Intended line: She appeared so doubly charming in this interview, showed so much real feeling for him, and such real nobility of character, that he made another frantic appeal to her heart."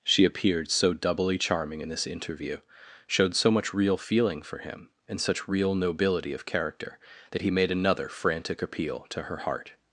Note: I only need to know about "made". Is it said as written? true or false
true